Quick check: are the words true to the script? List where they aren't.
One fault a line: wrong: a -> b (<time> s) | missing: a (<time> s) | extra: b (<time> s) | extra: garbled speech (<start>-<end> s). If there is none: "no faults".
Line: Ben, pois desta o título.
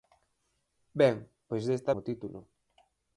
no faults